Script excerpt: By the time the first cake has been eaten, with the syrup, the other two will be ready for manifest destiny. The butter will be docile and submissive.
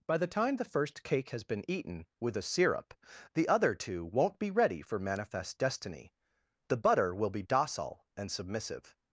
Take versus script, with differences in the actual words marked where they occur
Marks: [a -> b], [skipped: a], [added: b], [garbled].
By the time the first cake has been eaten, with [the -> a] syrup, the other two [will -> won't] be ready for manifest destiny. The butter will be docile and submissive.